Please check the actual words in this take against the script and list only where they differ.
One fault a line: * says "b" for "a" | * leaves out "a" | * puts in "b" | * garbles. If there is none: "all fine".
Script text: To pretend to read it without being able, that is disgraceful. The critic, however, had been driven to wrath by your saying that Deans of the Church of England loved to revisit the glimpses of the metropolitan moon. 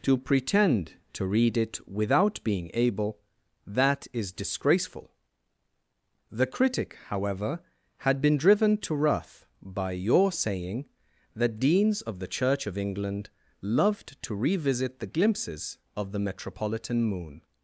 all fine